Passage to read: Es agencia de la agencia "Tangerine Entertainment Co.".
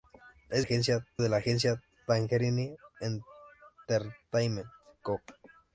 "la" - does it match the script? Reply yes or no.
yes